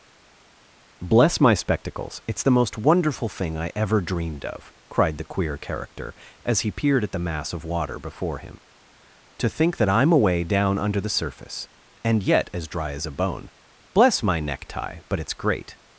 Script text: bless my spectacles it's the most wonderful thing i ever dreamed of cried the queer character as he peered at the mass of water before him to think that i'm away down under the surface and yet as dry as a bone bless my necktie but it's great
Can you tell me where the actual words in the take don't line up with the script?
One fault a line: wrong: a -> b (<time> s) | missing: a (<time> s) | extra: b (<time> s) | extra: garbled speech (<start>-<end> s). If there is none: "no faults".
no faults